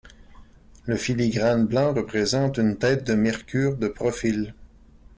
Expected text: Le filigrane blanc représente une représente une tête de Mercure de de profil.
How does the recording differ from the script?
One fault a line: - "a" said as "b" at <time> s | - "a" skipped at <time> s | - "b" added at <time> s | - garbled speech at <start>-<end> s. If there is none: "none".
- "représente une" skipped at 2.8 s
- "de" skipped at 3.9 s